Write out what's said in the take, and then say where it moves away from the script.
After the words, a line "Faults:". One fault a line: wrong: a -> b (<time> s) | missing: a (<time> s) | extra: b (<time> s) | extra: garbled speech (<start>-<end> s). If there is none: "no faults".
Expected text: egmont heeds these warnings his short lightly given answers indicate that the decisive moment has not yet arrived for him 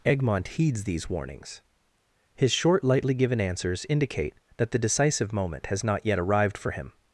egmont heeds these warnings his short lightly given answers indicate that the decisive moment has not yet arrived for him
Faults:
no faults